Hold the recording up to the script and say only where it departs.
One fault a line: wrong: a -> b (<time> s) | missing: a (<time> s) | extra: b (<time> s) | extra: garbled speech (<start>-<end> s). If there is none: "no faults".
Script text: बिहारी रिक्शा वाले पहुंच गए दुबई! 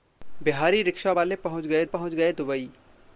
extra: पहुंच गए (1.9 s)